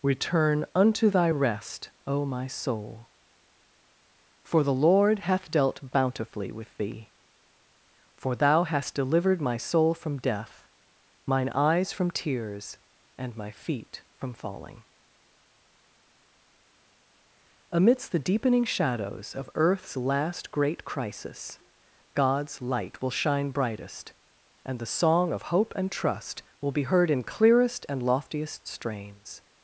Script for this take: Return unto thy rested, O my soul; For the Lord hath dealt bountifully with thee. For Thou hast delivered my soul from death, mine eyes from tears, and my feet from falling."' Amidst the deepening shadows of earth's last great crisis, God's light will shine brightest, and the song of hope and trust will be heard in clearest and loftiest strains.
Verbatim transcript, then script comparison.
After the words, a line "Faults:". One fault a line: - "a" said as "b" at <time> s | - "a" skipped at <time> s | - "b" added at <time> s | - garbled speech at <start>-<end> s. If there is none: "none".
Return unto thy rest, O my soul; For the Lord hath dealt bountifully with thee. For Thou hast delivered my soul from death, mine eyes from tears, and my feet from falling."' Amidst the deepening shadows of earth's last great crisis, God's light will shine brightest, and the song of hope and trust will be heard in clearest and loftiest strains.
Faults:
- "rested" said as "rest" at 1.3 s